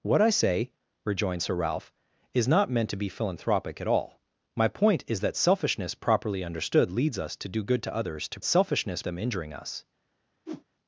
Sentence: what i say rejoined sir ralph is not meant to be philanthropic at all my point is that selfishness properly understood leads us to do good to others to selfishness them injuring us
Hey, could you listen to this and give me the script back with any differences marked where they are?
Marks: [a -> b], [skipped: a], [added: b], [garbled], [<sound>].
what i say rejoined sir ralph is not meant to be philanthropic at all my point is that selfishness properly understood leads us to do good to others to selfishness them injuring us [whoosh]